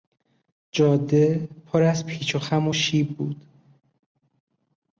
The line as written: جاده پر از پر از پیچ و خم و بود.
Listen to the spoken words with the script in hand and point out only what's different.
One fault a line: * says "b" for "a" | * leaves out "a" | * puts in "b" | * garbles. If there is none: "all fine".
* leaves out "پر از"
* puts in "شیب"